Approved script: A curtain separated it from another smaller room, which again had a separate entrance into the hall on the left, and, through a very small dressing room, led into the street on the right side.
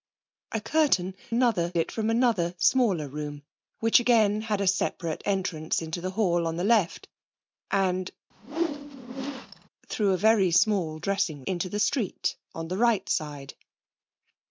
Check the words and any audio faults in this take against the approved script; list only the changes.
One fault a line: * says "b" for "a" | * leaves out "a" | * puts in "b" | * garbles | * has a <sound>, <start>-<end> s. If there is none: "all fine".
* says "another" for "separated"
* has a whoosh, 8.3-9.7 s
* leaves out "room led"